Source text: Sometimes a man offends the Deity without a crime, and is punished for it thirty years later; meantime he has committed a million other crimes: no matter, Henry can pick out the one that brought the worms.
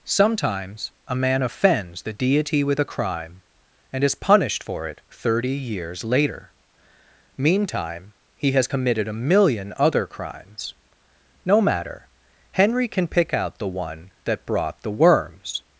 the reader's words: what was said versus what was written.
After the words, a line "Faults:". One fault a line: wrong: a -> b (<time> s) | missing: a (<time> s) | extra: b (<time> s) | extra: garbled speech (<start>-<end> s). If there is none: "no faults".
Sometimes a man offends the Deity with a crime, and is punished for it thirty years later; meantime he has committed a million other crimes: no matter, Henry can pick out the one that brought the worms.
Faults:
wrong: without -> with (2.6 s)